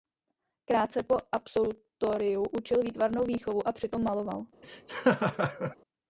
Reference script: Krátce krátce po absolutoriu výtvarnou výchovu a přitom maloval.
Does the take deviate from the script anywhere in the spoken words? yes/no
yes